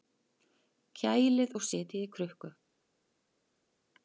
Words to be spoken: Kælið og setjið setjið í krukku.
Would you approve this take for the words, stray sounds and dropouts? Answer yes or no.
no